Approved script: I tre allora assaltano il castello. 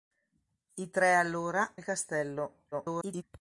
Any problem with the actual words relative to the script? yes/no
yes